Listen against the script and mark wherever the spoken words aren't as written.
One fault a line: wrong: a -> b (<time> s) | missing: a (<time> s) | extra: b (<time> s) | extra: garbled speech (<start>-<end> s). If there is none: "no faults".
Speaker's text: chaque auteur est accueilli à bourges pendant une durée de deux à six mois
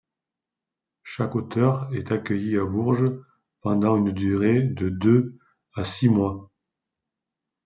no faults